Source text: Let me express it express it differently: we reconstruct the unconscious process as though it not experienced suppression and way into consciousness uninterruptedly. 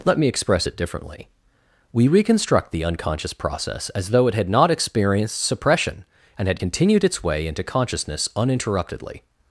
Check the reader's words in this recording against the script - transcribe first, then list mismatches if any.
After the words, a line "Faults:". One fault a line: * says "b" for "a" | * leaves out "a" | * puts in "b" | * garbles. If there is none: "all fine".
Let me express it differently: we reconstruct the unconscious process as though it had not experienced suppression and had continued its way into consciousness uninterruptedly.
Faults:
* leaves out "express it"
* puts in "had"
* puts in "had continued its"